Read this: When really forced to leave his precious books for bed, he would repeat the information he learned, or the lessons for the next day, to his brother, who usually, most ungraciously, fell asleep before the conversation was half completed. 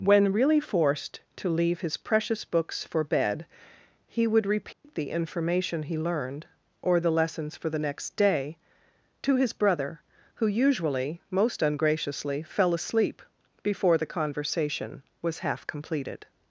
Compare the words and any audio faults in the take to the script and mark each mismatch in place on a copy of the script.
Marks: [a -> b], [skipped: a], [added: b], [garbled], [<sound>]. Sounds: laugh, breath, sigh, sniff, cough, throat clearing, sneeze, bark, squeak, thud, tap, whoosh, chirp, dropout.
When really forced to leave his precious books for bed, he would repeat [dropout] the information he learned, or the lessons for the next day, to his brother, who usually, most ungraciously, fell asleep before the conversation was half completed.